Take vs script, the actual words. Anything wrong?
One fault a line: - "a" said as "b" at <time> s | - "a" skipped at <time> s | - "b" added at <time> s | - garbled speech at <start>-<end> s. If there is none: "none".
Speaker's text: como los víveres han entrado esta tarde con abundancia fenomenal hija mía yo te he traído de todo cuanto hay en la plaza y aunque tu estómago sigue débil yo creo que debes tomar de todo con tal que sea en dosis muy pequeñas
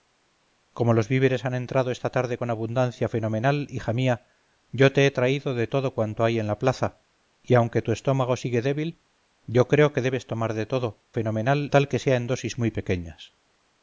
- "con" said as "fenomenal" at 11.1 s